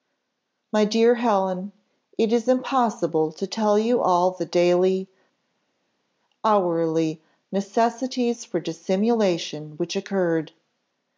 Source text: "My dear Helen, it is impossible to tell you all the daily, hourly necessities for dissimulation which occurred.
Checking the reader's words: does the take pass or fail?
pass